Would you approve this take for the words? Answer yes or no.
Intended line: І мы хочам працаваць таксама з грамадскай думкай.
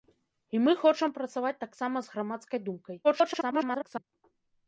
no